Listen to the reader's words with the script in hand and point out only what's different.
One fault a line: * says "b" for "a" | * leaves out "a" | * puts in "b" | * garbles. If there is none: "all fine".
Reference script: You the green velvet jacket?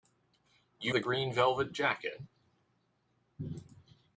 all fine